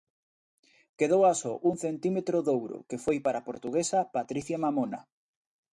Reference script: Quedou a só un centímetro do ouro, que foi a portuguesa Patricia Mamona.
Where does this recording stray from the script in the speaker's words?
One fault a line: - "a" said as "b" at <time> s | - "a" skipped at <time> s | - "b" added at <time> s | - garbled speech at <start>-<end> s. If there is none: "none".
- "para" added at 3.2 s